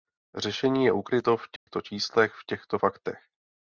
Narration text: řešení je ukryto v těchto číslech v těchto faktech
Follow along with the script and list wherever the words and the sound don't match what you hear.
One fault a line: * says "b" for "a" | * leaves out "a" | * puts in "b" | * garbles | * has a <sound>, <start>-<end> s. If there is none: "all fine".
* has a dropout, 1.6-1.7 s